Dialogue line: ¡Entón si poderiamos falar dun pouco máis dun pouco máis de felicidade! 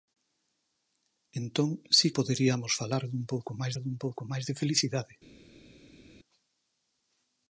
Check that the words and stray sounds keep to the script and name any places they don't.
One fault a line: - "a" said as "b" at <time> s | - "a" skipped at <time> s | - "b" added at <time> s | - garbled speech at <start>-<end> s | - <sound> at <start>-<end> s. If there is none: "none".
none